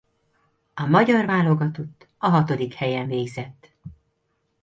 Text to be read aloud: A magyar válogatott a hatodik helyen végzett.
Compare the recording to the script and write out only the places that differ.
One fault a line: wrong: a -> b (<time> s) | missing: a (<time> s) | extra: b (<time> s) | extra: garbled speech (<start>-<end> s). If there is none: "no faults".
no faults